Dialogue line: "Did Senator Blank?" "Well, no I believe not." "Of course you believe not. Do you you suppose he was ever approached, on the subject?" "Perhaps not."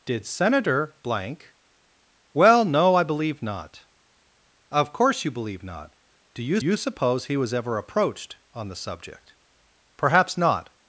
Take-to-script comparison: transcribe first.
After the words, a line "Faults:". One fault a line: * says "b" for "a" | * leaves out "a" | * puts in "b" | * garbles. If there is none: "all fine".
"Did Senator Blank?" "Well, no I believe not." "Of course you believe not. Do you you suppose he was ever approached, on the subject?" "Perhaps not."
Faults:
all fine